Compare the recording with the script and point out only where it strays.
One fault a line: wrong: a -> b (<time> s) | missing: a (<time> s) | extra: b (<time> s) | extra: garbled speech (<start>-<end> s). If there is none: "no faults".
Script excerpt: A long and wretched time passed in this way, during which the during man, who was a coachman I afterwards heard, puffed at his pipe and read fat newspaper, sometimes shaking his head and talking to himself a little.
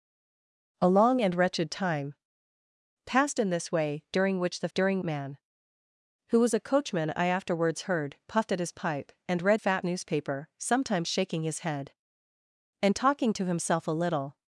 no faults